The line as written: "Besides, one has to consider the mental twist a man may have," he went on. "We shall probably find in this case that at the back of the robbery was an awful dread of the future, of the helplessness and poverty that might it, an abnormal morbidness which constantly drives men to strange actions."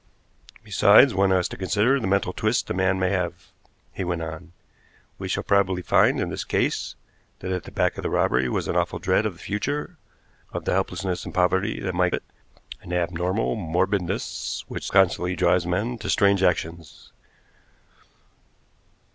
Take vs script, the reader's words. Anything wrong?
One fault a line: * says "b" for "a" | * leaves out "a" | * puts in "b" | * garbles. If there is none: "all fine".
all fine